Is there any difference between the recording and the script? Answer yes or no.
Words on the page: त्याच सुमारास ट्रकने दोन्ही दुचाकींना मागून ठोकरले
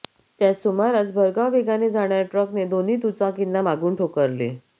yes